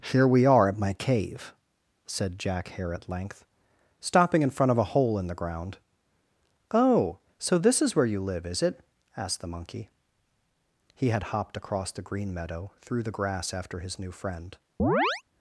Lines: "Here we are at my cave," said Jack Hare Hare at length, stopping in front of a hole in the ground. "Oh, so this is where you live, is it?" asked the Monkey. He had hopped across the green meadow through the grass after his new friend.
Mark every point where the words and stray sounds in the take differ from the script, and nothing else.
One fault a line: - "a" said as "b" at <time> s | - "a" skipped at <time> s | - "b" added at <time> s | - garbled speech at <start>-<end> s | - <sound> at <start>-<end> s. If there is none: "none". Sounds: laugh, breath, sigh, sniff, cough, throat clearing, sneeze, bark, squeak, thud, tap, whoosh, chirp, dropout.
- "Hare" skipped at 2.9 s
- chirp at 14.8-15.2 s